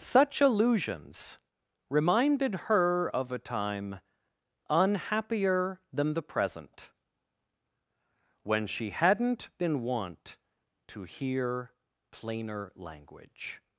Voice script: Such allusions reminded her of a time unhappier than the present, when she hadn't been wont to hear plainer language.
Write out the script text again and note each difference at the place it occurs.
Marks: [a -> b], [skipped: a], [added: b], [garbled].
Such allusions reminded her of a time unhappier than the present, when she hadn't been wont to hear plainer language.